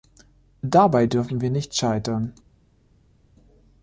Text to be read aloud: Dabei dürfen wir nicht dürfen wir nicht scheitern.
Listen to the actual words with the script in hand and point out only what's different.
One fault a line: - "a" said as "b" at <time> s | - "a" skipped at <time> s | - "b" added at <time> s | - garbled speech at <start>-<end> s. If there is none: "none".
- "dürfen wir nicht" skipped at 1.7 s